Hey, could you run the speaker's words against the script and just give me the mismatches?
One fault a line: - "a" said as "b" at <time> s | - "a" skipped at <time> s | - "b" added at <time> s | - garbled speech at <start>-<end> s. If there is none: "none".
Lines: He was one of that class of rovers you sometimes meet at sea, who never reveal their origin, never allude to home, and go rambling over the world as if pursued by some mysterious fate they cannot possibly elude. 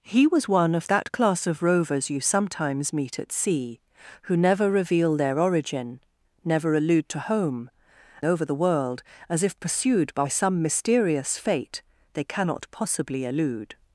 - "and go rambling" skipped at 7.7 s